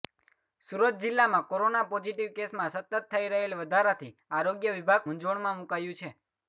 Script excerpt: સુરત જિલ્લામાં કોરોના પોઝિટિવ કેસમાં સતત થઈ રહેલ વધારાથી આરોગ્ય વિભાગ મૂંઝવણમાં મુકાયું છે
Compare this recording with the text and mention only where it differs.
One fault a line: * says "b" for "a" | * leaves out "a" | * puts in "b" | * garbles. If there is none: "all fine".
all fine